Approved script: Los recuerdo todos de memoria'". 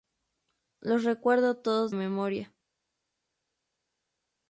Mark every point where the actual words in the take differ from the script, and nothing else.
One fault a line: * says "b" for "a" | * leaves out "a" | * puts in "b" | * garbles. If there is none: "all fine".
* leaves out "de"